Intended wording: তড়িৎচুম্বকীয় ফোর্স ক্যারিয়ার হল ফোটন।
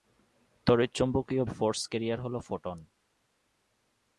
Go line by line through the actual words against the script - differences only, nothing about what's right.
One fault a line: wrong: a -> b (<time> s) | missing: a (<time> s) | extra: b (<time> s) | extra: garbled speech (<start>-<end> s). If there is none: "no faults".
no faults